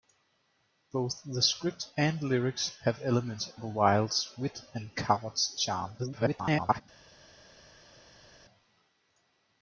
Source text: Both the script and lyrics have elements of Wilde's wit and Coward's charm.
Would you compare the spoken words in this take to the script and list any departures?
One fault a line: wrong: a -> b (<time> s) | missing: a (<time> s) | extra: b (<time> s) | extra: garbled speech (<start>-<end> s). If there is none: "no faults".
extra: garbled speech (6.0-6.8 s)